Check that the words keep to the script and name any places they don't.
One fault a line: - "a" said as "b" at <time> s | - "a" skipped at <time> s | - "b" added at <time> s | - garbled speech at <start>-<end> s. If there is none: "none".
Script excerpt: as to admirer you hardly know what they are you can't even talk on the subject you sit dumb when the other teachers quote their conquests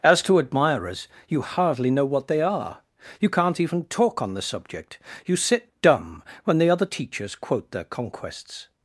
- "admirer" said as "admirers" at 0.4 s